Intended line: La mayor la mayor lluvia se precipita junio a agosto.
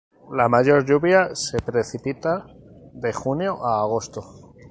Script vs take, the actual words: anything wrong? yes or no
yes